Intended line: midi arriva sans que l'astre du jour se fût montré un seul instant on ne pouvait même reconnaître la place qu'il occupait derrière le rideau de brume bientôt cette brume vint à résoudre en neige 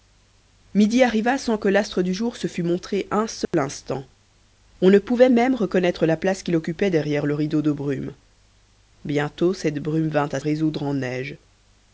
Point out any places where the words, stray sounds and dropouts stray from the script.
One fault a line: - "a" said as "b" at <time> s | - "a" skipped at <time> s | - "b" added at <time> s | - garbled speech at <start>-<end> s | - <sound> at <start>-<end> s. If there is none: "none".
- dropout at 3.5-3.5 s